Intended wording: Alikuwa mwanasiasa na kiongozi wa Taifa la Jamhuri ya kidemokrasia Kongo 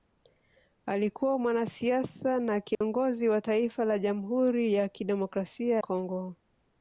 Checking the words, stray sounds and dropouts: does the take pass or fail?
fail